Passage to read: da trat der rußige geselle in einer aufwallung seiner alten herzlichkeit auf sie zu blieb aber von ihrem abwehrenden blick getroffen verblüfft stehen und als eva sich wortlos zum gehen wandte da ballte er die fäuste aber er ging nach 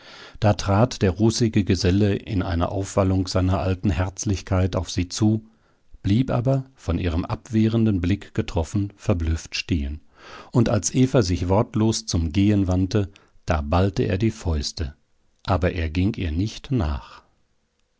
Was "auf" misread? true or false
false